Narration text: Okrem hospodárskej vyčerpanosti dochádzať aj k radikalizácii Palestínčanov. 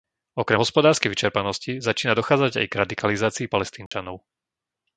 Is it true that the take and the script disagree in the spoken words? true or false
true